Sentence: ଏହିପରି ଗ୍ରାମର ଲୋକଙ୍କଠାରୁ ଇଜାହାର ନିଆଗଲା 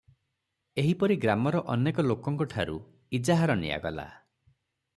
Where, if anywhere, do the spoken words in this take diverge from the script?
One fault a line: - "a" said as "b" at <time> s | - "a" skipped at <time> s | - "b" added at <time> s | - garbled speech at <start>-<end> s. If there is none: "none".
- "ଅନେକ" added at 1.7 s